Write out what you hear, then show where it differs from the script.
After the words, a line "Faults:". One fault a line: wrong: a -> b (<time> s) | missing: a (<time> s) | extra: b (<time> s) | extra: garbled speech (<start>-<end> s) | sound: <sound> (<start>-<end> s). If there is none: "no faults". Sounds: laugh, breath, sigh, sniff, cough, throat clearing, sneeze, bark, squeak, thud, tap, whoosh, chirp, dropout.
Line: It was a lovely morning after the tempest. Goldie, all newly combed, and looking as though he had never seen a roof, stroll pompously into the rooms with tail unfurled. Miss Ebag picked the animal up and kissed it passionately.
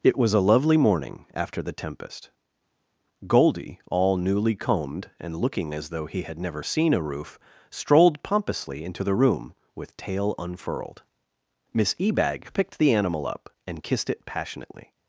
It was a lovely morning after the tempest. Goldie, all newly combed, and looking as though he had never seen a roof, strolled pompously into the room with tail unfurled. Miss Ebag picked the animal up and kissed it passionately.
Faults:
wrong: stroll -> strolled (7.7 s)
wrong: rooms -> room (9.2 s)